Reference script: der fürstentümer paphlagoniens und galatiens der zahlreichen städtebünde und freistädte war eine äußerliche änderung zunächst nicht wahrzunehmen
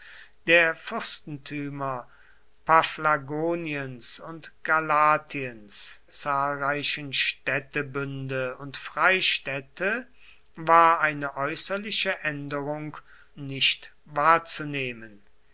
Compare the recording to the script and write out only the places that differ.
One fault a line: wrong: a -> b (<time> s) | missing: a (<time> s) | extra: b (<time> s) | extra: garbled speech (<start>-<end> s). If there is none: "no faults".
missing: der (6.0 s)
missing: zunächst (13.0 s)